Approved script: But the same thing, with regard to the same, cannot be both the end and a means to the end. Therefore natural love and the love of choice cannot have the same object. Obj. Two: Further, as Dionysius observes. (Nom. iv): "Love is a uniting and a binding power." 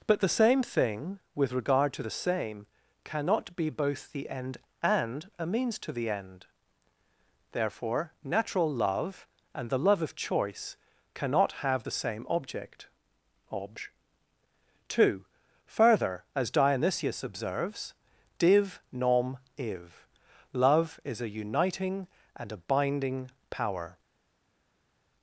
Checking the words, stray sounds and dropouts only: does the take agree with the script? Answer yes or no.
no